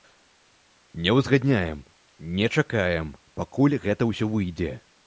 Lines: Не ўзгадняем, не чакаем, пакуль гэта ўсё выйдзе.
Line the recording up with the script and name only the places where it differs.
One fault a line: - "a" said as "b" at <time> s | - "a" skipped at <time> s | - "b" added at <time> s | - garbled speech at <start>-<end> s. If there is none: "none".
none